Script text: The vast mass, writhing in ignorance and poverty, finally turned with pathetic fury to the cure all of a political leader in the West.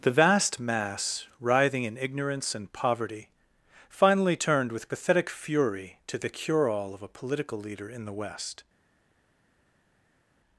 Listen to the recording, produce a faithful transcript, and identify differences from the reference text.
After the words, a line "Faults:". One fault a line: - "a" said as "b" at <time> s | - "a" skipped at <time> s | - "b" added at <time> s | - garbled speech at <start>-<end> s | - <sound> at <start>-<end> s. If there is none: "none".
The vast mass, writhing in ignorance and poverty, finally turned with pathetic fury to the cure all of a political leader in the West.
Faults:
none